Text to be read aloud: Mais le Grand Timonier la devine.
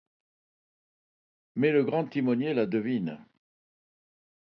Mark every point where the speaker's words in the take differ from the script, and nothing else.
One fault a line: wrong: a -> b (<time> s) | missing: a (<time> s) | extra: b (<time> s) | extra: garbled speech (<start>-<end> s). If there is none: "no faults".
no faults